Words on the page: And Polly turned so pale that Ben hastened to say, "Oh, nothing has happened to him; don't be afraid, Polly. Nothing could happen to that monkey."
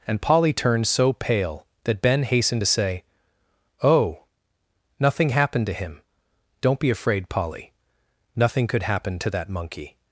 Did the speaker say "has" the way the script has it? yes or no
no